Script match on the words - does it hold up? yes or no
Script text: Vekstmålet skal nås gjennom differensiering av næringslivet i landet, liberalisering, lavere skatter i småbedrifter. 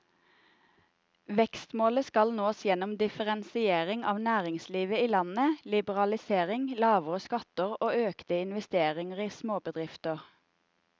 no